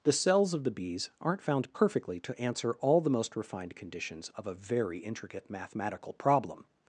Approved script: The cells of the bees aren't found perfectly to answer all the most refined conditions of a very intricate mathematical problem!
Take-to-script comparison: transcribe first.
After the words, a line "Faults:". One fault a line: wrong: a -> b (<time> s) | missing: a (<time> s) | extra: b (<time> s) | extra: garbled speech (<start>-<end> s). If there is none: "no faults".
The cells of the bees aren't found perfectly to answer all the most refined conditions of a very intricate mathematical problem!
Faults:
no faults